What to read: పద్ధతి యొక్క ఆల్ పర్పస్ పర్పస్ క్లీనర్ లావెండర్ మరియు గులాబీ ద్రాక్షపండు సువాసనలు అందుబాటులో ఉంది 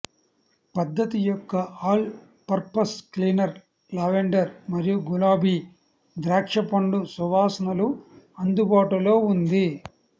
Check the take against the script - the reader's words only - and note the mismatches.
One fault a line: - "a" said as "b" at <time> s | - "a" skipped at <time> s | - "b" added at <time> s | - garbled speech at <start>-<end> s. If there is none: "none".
- "పర్పస్" skipped at 3.0 s